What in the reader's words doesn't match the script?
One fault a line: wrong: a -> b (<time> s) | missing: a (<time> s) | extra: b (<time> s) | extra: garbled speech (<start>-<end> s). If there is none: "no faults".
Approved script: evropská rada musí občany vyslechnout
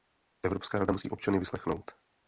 no faults